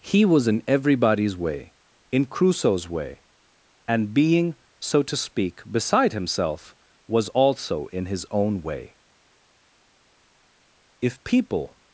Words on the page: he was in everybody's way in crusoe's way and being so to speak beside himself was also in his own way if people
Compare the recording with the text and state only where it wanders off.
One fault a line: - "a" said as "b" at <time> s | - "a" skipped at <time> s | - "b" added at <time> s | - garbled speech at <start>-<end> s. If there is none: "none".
none